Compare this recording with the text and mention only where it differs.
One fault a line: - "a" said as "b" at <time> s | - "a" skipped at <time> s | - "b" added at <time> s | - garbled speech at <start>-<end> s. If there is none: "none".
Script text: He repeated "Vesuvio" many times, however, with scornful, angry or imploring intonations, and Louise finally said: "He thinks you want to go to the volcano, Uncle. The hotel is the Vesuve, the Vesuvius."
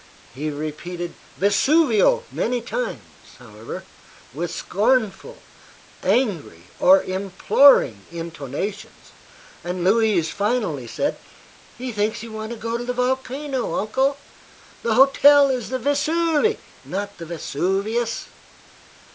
- "not" added at 16.8 s